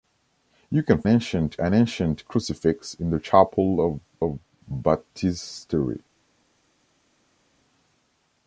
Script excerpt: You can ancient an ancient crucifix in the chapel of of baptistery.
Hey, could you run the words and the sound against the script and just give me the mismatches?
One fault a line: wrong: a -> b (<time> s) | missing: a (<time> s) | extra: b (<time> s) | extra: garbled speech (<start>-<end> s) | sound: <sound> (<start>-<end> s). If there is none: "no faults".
no faults